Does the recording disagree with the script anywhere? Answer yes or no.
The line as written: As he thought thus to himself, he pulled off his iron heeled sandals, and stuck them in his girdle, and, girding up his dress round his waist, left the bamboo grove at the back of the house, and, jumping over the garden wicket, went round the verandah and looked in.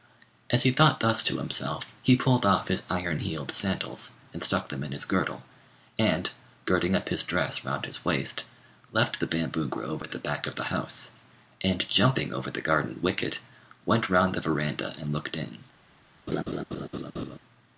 no